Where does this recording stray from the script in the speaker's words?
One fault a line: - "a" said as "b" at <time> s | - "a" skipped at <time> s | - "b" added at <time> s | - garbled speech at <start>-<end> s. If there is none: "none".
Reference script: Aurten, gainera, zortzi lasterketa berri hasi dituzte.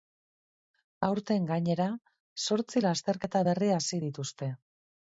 none